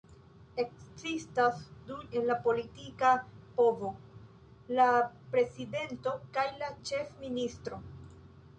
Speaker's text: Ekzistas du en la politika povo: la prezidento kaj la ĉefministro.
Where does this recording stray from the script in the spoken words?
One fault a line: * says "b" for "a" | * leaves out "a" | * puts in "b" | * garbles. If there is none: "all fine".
all fine